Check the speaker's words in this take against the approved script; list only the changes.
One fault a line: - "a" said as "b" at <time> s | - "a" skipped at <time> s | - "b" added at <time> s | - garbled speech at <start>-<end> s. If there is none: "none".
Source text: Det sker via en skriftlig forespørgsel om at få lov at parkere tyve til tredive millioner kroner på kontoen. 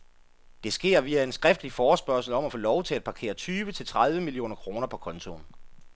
- "til" added at 2.8 s